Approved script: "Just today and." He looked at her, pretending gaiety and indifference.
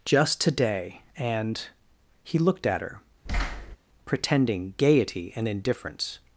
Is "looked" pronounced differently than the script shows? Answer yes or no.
no